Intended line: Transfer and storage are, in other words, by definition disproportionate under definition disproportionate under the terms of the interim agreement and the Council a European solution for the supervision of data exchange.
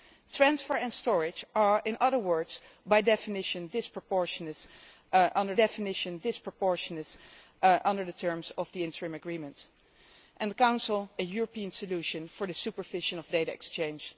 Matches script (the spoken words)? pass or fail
pass